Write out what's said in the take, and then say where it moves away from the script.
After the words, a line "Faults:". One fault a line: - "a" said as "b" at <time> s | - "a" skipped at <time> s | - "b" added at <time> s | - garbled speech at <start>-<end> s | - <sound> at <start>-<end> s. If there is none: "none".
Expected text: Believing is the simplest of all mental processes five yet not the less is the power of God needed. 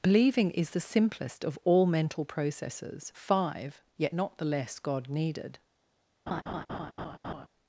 Believing is the simplest of all mental processes five yet not the less God needed.
Faults:
- "is the power of" skipped at 4.8 s
- laugh at 6.3-7.5 s